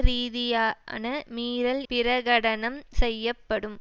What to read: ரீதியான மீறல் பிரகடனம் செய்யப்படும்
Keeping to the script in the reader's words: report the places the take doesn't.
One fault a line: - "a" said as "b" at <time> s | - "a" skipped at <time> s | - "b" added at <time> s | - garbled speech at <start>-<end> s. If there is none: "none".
none